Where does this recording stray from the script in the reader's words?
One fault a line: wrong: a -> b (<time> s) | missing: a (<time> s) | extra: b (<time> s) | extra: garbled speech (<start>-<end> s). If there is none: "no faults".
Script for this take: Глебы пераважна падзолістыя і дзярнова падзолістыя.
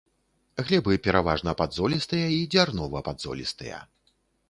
no faults